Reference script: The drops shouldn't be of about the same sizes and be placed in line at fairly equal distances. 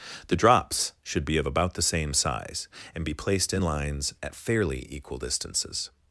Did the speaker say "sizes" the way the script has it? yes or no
no